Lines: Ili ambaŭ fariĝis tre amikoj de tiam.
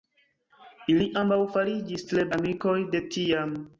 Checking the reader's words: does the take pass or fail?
pass